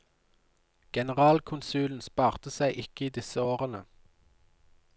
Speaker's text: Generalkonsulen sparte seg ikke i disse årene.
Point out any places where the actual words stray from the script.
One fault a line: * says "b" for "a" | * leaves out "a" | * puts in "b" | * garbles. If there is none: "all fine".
all fine